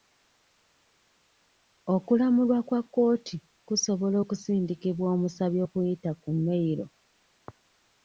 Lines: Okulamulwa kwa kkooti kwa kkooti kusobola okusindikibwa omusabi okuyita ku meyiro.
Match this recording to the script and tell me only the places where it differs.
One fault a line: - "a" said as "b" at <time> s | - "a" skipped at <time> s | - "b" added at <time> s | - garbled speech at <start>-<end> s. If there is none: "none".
- "kwa kkooti" skipped at 3.4 s